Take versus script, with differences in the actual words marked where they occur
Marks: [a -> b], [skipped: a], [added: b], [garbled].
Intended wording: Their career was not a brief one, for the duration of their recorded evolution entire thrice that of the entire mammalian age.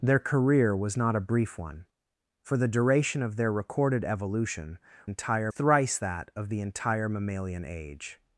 Their career was not a brief one, for the duration of their recorded evolution entire thrice that of the entire mammalian age.